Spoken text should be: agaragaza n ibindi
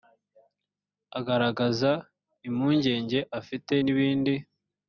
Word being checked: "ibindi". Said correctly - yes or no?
yes